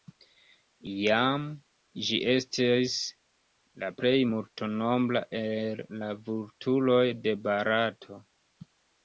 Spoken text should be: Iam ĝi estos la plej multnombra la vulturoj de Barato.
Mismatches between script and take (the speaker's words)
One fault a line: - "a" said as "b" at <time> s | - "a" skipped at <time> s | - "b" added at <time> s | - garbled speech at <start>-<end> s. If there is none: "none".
- "estos" said as "estis" at 2.3 s
- "el" added at 5.4 s